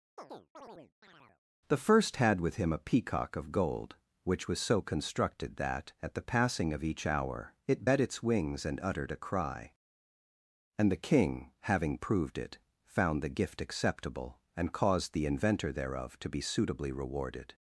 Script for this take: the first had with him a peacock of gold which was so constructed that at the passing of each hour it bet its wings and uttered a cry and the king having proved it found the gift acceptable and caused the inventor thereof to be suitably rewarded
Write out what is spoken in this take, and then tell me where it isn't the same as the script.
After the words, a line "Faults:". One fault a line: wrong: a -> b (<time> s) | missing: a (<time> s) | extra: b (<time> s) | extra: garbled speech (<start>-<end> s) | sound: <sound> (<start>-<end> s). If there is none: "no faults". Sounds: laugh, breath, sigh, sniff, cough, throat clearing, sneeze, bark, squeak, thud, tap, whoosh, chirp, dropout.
the first had with him a peacock of gold which was so constructed that at the passing of each hour it bet its wings and uttered a cry and the king having proved it found the gift acceptable and caused the inventor thereof to be suitably rewarded
Faults:
sound: chirp (0.2-1.4 s)